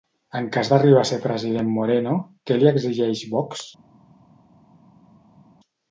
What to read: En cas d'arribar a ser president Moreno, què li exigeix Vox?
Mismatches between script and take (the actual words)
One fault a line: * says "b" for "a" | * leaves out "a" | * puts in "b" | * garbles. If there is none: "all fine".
all fine